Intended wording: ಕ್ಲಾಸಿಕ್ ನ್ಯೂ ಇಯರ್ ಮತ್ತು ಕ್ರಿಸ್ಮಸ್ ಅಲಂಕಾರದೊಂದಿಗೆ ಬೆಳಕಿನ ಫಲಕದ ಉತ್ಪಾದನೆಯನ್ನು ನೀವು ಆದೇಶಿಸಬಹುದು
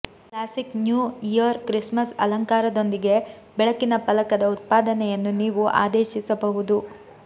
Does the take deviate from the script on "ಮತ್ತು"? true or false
true